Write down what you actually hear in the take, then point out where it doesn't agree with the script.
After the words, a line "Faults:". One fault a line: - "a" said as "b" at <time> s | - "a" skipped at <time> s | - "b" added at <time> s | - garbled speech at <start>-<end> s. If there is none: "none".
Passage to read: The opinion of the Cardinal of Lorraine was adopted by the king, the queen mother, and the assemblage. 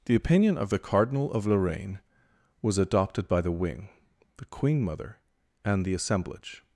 The opinion of the Cardinal of Lorraine was adopted by the wing, the queen mother, and the assemblage.
Faults:
- "king" said as "wing" at 3.5 s